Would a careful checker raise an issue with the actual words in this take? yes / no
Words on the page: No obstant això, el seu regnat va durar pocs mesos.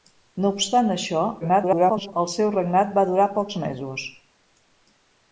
yes